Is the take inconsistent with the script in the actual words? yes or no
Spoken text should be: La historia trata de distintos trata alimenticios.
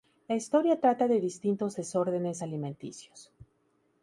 yes